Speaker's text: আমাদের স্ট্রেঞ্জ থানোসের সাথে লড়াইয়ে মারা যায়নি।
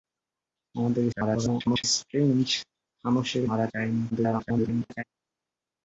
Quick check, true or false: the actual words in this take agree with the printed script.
false